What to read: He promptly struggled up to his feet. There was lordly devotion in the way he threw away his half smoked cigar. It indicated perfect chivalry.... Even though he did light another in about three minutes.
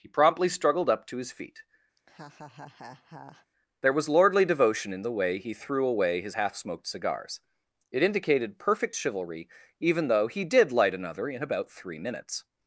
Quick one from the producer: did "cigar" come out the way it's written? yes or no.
no